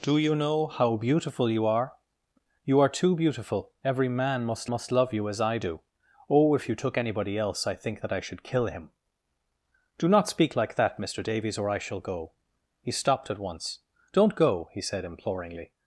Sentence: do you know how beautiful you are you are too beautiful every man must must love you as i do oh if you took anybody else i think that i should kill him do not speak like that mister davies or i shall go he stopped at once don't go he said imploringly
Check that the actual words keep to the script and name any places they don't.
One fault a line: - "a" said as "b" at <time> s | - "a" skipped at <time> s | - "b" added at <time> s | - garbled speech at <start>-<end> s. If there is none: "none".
none